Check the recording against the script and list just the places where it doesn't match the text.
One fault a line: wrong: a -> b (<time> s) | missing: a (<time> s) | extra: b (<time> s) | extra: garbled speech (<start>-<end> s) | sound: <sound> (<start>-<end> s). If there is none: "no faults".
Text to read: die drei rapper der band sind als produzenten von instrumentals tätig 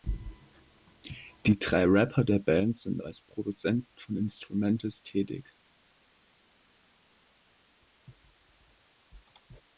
no faults